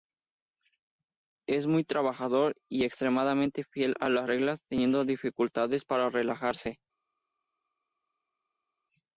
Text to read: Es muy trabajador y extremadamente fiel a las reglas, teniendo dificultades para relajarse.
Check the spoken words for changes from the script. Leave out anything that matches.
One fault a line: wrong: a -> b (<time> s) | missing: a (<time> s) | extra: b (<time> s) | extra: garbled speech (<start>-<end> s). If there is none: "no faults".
no faults